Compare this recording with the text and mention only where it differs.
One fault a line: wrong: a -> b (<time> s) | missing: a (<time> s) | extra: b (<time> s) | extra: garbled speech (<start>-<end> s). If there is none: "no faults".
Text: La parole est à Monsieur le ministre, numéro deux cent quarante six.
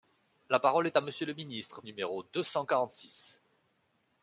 no faults